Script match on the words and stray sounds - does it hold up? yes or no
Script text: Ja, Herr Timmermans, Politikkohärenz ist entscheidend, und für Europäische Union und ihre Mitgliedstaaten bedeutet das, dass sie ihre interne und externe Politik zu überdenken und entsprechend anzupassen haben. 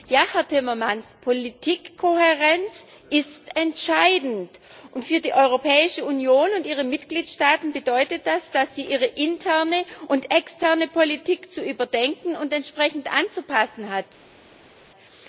no